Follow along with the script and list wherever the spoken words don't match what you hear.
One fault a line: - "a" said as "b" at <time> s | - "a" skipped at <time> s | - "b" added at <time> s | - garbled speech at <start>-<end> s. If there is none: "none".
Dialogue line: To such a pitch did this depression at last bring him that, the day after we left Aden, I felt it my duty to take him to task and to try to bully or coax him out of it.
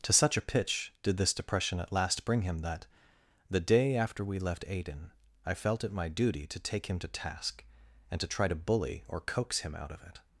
none